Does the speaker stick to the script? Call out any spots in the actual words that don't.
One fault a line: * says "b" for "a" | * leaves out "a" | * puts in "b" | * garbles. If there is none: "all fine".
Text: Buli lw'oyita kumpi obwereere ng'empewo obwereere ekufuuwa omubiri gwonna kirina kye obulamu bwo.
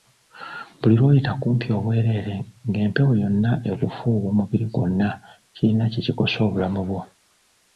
* says "yonna" for "obwereere"
* puts in "kikosa"